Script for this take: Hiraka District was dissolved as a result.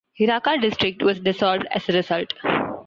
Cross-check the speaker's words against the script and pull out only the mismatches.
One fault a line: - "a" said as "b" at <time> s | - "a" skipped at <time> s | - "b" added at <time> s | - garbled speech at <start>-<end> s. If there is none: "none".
none